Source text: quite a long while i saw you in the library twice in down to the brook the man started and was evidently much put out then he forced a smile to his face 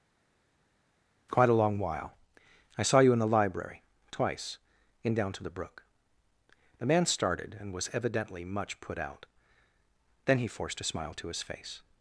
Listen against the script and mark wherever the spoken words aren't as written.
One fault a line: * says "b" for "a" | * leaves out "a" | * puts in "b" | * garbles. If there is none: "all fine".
all fine